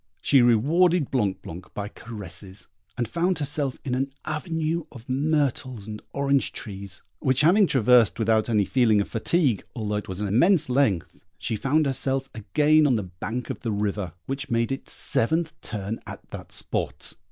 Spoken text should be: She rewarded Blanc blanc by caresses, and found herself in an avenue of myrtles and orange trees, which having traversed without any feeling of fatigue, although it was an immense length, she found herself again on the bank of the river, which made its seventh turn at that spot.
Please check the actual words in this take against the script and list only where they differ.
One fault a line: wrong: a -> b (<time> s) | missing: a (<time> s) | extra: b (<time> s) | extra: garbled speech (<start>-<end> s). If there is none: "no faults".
no faults